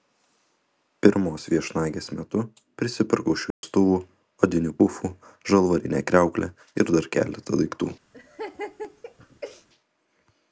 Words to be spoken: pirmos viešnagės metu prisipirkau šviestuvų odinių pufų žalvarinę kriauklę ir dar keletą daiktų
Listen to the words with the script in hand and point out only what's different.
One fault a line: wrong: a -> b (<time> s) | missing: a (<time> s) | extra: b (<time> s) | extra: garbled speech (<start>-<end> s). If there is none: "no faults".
no faults